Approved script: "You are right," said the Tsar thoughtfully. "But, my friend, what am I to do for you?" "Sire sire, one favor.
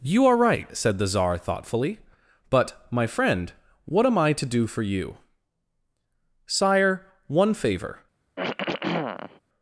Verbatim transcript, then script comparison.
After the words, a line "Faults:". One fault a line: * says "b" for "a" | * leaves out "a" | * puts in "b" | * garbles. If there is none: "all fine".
"You are right," said the Tsar thoughtfully. "But, my friend, what am I to do for you?" "Sire, one favor.
Faults:
* leaves out "sire"